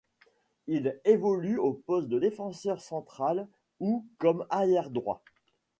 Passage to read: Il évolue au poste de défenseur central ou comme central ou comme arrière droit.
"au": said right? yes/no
yes